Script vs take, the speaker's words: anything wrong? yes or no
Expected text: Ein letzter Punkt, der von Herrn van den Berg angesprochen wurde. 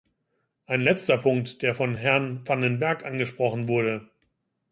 no